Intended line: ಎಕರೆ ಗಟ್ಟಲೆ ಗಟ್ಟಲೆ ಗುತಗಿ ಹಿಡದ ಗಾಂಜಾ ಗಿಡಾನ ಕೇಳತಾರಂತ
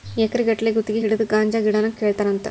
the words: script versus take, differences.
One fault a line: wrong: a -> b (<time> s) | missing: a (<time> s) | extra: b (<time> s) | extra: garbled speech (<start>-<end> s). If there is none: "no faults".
missing: ಗಟ್ಟಲೆ (0.7 s)